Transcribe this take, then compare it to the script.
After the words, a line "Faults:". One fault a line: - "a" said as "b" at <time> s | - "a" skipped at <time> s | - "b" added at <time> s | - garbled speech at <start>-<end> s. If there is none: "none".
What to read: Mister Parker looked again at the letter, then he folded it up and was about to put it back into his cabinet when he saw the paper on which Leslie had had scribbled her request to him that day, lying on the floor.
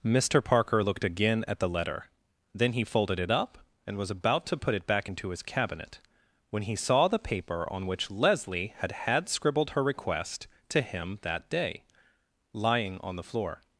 Mister Parker looked again at the letter, then he folded it up and was about to put it back into his cabinet when he saw the paper on which Leslie had had scribbled her request to him that day, lying on the floor.
Faults:
none